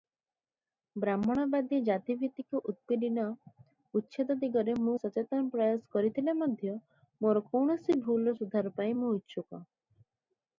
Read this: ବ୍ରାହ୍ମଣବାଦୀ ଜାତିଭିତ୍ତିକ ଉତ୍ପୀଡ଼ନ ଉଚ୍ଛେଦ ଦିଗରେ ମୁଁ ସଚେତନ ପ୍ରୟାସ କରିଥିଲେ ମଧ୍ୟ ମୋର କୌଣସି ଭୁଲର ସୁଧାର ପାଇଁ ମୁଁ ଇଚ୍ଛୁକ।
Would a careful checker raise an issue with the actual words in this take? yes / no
no